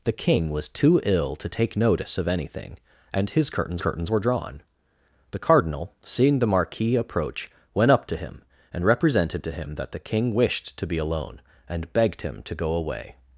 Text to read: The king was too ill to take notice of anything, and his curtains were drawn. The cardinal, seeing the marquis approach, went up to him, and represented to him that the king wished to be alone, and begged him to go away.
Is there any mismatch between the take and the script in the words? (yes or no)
yes